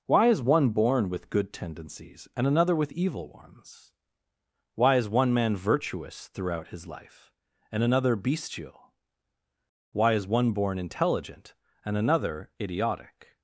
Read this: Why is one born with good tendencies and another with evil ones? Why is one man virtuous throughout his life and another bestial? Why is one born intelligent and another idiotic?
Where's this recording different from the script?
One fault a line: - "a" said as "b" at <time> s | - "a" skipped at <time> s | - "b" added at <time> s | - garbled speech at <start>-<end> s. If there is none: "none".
none